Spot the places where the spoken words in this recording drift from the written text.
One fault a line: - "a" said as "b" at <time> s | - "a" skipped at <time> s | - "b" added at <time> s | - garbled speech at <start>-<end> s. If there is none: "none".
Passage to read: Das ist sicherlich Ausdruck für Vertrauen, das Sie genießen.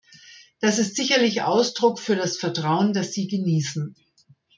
- "das" added at 2.1 s